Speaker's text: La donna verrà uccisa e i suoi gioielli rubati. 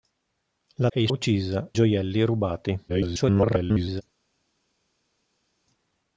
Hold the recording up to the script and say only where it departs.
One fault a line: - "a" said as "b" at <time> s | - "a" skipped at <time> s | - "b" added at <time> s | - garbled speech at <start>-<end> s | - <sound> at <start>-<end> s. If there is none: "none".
- "donna verrà uccisa" skipped at 0.9 s
- "suoi" said as "uccisa" at 1.1 s
- garbled speech at 2.9-4.0 s